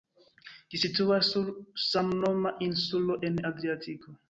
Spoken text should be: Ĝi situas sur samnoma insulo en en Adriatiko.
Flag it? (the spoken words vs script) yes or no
yes